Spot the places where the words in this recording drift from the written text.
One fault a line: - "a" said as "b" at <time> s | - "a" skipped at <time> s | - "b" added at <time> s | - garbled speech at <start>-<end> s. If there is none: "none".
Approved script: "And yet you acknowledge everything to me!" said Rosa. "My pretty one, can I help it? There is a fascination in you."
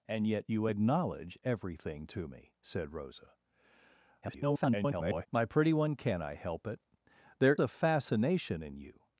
- garbled speech at 4.2-5.3 s
- "is" skipped at 7.5 s